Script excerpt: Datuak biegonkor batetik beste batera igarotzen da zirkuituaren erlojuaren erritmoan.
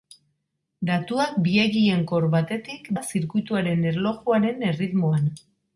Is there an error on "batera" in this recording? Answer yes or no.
yes